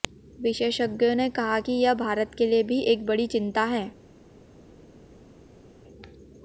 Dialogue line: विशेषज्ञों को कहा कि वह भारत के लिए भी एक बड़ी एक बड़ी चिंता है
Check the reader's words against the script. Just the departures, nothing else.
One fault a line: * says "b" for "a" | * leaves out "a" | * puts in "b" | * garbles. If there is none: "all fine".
* says "ने" for "को"
* says "यह" for "वह"
* leaves out "एक बड़ी"